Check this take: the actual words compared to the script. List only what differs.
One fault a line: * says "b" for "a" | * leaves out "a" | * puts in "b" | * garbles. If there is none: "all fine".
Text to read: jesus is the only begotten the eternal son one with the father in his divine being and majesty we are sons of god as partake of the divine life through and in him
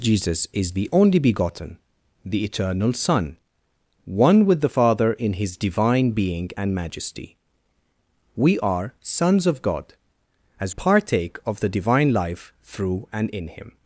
all fine